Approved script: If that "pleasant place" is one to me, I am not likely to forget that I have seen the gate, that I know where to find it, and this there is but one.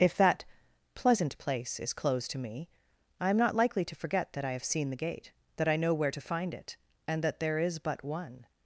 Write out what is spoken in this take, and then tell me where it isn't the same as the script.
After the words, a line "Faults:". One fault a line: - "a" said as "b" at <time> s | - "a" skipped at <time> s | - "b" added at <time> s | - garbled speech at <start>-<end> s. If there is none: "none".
If that "pleasant place" is closed to me, I am not likely to forget that I have seen the gate, that I know where to find it, and that there is but one.
Faults:
- "one" said as "closed" at 1.9 s
- "this" said as "that" at 7.2 s